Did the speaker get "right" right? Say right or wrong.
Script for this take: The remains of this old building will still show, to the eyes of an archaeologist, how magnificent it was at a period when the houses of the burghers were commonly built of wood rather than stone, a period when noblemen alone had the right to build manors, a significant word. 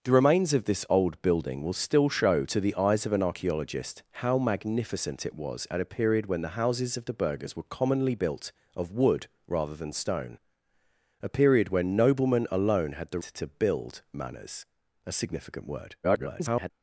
wrong